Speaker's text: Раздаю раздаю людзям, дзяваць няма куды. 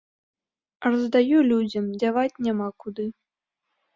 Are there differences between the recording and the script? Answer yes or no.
yes